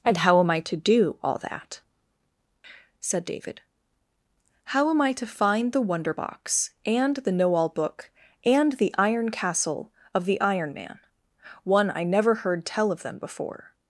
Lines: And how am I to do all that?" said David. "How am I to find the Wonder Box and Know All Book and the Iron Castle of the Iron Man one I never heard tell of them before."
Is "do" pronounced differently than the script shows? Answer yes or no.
no